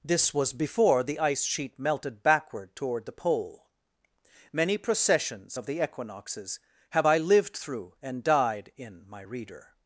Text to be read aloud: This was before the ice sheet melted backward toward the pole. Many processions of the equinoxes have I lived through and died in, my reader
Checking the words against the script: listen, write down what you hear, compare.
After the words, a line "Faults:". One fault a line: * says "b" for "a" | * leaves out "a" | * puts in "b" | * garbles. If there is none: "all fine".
This was before the ice sheet melted backward toward the pole. Many processions of the equinoxes have I lived through and died in, my reader
Faults:
all fine